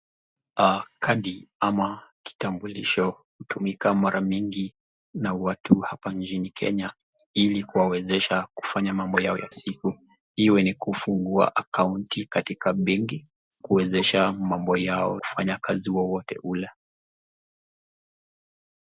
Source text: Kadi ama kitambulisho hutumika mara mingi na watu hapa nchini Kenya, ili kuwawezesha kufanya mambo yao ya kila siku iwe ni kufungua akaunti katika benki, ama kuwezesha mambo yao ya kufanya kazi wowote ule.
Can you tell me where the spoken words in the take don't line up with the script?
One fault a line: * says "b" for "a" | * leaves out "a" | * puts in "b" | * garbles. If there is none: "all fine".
* leaves out "kila"
* leaves out "ama"
* leaves out "ya"